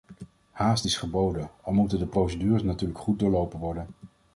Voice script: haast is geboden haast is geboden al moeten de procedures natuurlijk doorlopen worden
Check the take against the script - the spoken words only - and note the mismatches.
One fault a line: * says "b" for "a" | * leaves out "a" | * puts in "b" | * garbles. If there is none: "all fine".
* leaves out "haast is geboden"
* puts in "goed"